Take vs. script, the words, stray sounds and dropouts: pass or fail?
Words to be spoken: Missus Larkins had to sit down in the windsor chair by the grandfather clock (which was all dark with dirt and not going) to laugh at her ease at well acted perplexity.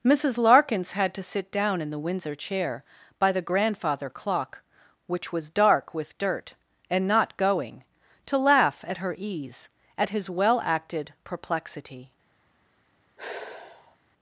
fail